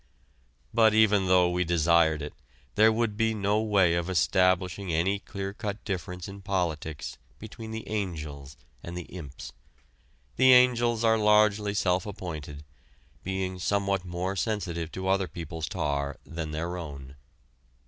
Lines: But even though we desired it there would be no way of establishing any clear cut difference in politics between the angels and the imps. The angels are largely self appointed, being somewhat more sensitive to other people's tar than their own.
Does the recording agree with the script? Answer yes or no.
yes